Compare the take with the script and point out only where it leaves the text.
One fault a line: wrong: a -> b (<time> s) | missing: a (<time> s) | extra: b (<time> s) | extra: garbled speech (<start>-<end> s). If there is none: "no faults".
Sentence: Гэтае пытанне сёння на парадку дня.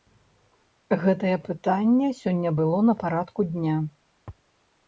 extra: было (2.6 s)